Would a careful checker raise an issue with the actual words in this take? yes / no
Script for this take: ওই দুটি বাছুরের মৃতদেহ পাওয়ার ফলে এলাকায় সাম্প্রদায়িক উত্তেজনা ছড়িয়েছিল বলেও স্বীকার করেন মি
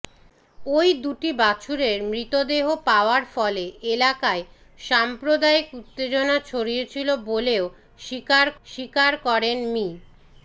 yes